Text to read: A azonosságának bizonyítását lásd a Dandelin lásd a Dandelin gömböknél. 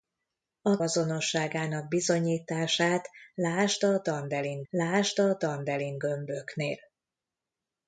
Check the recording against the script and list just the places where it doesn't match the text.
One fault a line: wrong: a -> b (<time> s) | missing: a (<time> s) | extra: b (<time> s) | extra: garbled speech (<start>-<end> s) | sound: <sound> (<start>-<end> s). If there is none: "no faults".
no faults